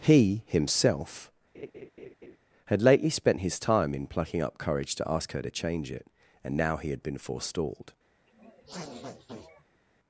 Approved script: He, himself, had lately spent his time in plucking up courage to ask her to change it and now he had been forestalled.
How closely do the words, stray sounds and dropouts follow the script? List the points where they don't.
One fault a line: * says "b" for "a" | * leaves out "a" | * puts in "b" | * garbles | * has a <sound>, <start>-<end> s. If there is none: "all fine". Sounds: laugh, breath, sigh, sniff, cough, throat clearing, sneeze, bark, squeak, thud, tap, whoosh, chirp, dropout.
* has a laugh, 1.5-2.4 s
* has a sniff, 8.3-9.8 s